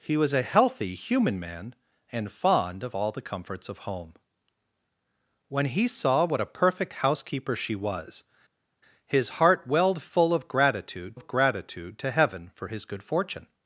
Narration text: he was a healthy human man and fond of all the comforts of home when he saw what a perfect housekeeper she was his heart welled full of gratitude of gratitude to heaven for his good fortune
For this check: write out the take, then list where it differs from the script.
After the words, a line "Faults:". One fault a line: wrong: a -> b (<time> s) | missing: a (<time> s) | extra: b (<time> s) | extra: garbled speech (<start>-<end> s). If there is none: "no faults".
he was a healthy human man and fond of all the comforts of home when he saw what a perfect housekeeper she was his heart welled full of gratitude of gratitude to heaven for his good fortune
Faults:
no faults